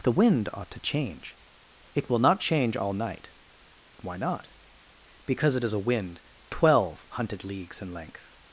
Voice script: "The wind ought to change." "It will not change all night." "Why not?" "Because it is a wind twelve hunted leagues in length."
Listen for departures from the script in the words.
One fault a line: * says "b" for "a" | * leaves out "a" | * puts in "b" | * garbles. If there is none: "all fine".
all fine